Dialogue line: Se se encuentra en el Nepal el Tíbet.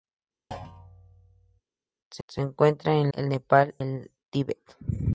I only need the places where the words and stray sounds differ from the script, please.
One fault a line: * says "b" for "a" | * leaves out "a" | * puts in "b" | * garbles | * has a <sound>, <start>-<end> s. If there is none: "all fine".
* has a thud, 0.5-1.6 s